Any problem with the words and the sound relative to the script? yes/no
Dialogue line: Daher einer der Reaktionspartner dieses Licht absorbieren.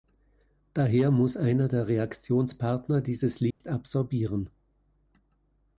yes